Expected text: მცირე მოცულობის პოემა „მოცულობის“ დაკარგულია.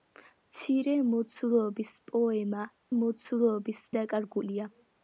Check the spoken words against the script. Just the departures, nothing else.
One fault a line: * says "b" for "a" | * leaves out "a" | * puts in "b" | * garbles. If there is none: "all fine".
all fine